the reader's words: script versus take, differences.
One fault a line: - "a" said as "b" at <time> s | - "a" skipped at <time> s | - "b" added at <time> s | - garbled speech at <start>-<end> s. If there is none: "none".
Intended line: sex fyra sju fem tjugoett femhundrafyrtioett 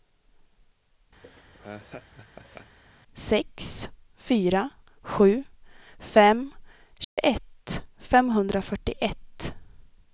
none